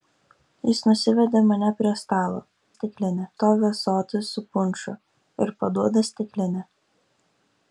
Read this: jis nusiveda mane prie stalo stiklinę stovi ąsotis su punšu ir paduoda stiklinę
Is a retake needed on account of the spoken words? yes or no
no